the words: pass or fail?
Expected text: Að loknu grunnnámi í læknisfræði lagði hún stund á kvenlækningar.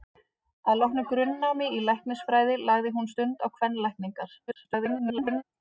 fail